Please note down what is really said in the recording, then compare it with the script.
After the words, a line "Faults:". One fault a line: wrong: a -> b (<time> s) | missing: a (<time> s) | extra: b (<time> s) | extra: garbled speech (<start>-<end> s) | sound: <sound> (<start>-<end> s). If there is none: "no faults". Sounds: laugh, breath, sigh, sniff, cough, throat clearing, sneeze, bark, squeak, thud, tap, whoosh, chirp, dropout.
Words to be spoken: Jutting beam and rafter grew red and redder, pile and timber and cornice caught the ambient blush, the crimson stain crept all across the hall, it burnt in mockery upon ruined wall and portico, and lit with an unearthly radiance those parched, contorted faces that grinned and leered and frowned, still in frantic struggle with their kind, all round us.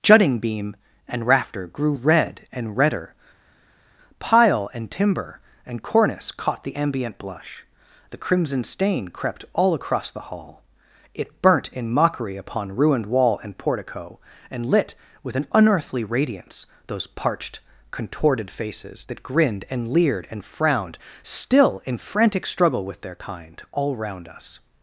Jutting beam and rafter grew red and redder, pile and timber and cornice caught the ambient blush, the crimson stain crept all across the hall, it burnt in mockery upon ruined wall and portico, and lit with an unearthly radiance those parched, contorted faces that grinned and leered and frowned, still in frantic struggle with their kind, all round us.
Faults:
no faults